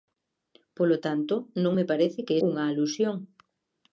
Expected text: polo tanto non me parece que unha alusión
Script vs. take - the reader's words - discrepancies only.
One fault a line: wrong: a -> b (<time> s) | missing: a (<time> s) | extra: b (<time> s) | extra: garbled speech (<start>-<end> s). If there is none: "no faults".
no faults